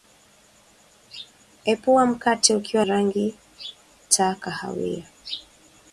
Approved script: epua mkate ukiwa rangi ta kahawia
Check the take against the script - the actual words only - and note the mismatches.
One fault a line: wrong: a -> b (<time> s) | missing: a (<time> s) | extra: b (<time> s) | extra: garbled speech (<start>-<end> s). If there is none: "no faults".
no faults